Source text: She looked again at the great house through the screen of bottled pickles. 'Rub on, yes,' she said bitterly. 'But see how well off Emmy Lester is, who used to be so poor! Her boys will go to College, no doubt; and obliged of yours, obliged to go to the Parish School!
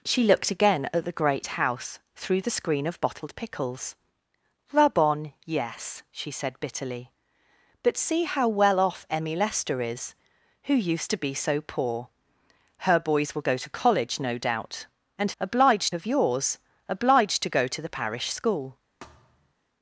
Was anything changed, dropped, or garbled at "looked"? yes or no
no